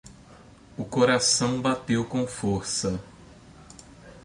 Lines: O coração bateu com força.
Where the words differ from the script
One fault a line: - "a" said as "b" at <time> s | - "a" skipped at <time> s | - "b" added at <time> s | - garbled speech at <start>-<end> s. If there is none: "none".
none